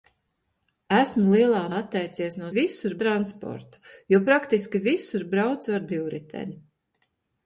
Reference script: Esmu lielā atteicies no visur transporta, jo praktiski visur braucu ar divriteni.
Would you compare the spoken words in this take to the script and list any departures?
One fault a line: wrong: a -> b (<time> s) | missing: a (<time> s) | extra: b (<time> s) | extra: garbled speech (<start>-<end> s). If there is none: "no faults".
no faults